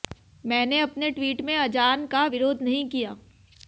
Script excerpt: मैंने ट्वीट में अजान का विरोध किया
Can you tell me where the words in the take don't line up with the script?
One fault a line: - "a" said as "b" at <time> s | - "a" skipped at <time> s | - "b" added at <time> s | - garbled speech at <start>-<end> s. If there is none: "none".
- "अपने" added at 0.8 s
- "नहीं" added at 2.6 s